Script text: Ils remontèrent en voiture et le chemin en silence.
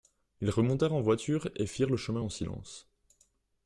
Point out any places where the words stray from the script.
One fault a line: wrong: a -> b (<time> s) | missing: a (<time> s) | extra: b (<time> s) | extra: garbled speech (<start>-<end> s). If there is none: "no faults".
extra: firent (1.7 s)